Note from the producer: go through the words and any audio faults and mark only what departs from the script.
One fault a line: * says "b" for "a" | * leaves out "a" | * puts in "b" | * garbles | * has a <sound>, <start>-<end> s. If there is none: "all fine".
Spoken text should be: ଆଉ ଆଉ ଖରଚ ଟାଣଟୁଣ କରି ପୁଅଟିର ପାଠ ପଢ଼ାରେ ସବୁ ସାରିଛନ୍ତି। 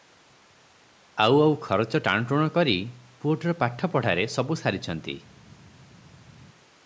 all fine